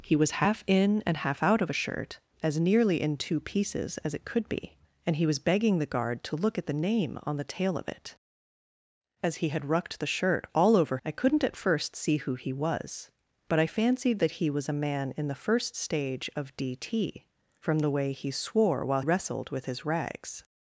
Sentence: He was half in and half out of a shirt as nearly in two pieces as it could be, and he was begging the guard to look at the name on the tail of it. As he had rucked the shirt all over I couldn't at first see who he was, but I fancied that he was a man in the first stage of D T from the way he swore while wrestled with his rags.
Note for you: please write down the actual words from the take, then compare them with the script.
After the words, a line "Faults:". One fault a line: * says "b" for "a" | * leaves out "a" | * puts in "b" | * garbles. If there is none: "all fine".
He was half in and half out of a shirt as nearly in two pieces as it could be, and he was begging the guard to look at the name on the tail of it. As he had rucked the shirt all over I couldn't at first see who he was, but I fancied that he was a man in the first stage of D T from the way he swore while wrestled with his rags.
Faults:
all fine